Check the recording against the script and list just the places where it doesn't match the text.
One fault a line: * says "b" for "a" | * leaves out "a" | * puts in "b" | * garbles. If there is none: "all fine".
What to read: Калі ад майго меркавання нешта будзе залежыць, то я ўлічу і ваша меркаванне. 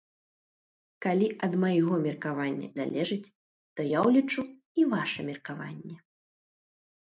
* leaves out "нешта будзе"